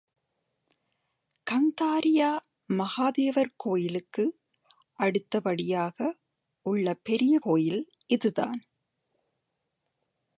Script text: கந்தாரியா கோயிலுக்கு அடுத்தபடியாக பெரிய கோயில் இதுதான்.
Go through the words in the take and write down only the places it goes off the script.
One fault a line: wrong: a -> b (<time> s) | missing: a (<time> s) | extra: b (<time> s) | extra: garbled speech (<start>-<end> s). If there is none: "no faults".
extra: மகாதேவர் (2.7 s)
extra: உள்ள (6.6 s)